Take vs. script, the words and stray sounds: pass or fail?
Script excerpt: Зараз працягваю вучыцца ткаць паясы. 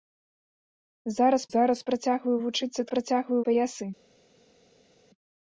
fail